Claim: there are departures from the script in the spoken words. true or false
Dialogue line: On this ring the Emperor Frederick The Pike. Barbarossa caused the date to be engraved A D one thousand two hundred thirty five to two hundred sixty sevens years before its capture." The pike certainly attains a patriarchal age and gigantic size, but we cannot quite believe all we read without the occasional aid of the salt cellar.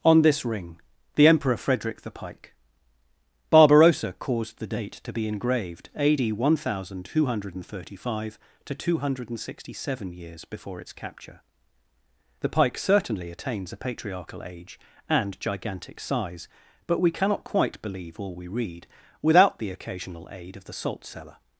true